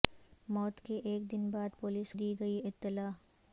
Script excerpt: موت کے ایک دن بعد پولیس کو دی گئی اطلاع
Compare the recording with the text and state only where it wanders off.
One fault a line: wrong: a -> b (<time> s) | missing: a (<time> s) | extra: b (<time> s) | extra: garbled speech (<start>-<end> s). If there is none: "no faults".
missing: کو (2.1 s)